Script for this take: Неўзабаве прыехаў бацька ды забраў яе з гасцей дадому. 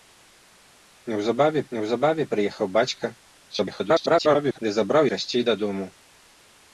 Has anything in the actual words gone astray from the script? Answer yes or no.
yes